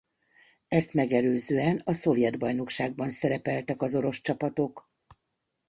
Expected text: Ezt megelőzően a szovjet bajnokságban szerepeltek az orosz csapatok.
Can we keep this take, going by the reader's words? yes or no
yes